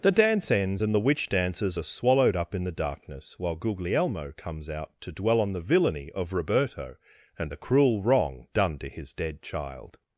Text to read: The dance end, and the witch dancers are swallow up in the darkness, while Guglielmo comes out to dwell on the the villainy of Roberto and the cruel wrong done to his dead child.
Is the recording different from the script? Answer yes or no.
yes